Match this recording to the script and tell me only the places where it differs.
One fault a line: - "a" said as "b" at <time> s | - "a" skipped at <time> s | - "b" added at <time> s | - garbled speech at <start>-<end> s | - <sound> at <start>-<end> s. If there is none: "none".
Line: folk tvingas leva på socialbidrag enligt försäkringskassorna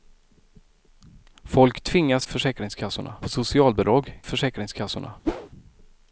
- "leva" said as "försäkringskassorna" at 2.2 s
- "enligt" skipped at 4.2 s
- whoosh at 5.2-5.5 s